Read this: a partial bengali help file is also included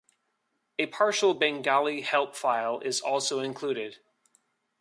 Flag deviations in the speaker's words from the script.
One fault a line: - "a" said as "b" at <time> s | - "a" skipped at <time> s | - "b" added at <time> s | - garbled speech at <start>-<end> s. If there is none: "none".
none